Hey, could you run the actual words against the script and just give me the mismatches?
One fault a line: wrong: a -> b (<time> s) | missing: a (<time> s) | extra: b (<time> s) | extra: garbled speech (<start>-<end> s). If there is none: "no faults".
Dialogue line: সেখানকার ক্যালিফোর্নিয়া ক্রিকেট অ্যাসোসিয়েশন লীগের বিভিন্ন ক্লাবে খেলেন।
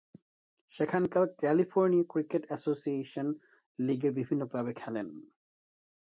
no faults